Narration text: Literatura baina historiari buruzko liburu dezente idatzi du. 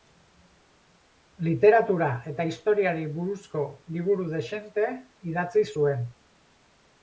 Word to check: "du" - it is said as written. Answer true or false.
false